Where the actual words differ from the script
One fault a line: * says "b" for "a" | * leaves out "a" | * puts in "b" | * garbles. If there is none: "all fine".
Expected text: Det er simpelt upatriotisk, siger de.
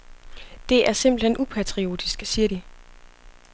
* puts in "hen"